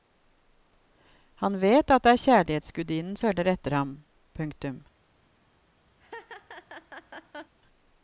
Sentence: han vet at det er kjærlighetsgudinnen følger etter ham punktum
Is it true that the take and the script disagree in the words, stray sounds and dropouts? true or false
true